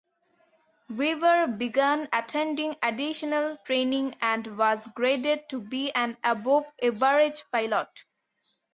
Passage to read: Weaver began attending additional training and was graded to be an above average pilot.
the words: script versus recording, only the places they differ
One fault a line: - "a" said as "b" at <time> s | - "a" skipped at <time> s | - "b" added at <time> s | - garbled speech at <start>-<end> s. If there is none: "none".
none